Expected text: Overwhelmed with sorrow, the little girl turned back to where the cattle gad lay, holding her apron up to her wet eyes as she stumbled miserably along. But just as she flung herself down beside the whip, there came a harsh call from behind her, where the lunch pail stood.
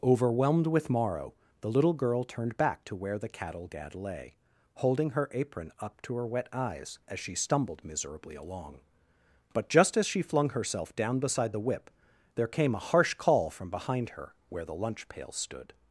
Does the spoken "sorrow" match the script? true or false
false